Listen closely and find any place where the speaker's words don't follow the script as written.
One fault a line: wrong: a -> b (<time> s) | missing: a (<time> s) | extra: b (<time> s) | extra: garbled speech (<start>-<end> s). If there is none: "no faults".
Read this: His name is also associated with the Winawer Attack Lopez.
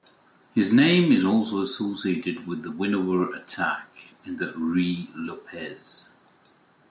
extra: in the Ruy (4.2 s)